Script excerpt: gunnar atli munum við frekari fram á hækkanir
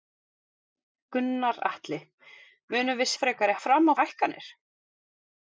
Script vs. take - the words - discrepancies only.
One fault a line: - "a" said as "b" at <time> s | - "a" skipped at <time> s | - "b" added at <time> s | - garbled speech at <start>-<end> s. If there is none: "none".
none